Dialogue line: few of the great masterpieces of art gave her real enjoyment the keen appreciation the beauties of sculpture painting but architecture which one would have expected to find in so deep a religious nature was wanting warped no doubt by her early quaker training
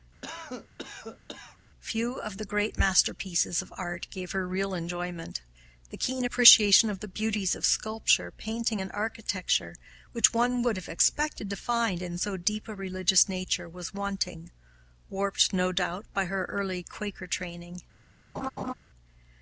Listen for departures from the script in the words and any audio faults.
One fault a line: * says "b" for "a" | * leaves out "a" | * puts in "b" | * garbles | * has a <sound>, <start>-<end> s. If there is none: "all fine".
* has a cough, 0.2-1.6 s
* puts in "of"
* says "and" for "but"
* has a laugh, 18.3-18.7 s